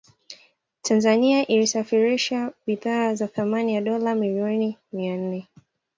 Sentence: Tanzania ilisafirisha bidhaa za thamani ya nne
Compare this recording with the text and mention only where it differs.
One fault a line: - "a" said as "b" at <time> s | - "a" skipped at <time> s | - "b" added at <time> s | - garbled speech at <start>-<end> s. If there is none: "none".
- "dola milioni mia" added at 3.8 s